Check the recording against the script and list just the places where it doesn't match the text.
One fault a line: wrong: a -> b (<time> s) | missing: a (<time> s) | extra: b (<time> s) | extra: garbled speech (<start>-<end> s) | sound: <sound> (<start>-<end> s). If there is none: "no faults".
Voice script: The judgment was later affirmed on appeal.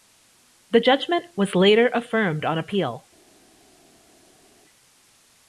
no faults